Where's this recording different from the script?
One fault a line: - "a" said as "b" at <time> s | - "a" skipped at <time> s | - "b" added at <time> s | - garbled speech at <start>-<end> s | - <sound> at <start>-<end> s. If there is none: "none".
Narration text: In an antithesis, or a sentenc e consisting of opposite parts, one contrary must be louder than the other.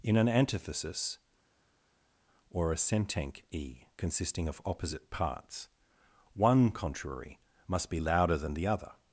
none